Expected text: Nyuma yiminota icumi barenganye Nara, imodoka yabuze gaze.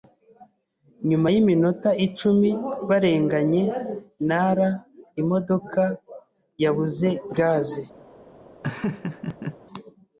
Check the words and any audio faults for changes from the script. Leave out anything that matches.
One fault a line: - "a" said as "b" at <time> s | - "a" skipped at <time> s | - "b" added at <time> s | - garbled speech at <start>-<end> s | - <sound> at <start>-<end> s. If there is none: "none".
- laugh at 8.6-9.6 s